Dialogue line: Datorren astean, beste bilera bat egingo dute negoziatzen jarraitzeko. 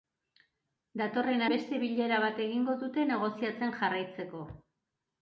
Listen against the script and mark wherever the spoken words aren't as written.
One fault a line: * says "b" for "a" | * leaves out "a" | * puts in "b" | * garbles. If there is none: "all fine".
* leaves out "astean"